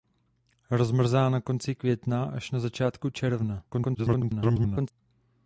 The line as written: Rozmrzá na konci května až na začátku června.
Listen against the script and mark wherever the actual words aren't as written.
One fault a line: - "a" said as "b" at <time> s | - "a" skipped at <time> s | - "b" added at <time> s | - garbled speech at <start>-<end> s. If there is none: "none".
- garbled speech at 3.7-4.9 s